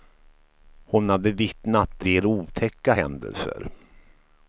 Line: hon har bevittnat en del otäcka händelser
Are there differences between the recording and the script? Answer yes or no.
yes